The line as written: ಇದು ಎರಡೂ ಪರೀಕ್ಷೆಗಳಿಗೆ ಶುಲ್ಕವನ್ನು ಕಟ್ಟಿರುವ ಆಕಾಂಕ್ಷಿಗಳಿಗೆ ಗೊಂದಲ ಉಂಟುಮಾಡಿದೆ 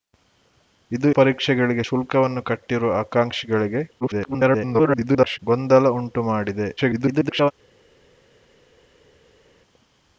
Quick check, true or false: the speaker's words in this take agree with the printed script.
false